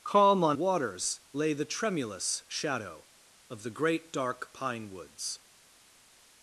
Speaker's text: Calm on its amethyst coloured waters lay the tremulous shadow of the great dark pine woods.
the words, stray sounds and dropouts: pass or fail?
fail